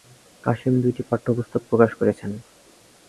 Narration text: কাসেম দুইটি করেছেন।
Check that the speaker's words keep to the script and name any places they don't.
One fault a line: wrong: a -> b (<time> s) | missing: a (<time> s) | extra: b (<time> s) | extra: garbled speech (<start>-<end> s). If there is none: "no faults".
extra: পাঠ্যপুস্তক প্রকাশ (1.1 s)